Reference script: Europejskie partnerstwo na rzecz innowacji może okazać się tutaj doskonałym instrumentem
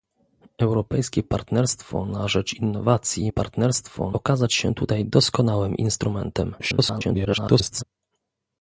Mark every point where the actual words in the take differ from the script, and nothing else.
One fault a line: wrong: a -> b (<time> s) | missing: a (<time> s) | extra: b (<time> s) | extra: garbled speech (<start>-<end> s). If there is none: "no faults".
wrong: może -> partnerstwo (3.3 s)
extra: garbled speech (6.6-7.8 s)